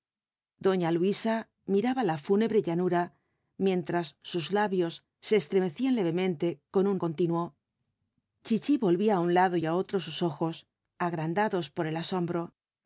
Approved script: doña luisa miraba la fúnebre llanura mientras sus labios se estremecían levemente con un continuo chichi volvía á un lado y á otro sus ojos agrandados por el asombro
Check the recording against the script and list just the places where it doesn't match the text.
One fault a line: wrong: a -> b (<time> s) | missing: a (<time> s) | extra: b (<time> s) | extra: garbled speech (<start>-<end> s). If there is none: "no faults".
no faults